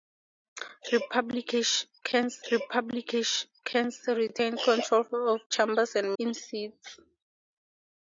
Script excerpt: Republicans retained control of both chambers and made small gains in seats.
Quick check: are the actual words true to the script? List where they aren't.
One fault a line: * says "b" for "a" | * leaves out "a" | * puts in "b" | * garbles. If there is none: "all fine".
* puts in "republicans"
* leaves out "both"
* leaves out "made small gains"